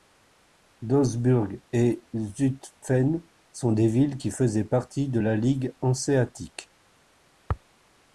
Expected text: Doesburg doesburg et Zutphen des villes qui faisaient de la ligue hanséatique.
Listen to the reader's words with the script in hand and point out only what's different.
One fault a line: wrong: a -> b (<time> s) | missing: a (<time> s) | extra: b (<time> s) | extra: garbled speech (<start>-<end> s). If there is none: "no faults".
missing: doesburg (1.6 s)
extra: sont (3.5 s)
extra: partie (4.6 s)